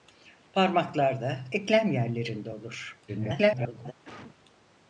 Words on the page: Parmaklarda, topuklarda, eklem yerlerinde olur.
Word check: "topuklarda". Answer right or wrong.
wrong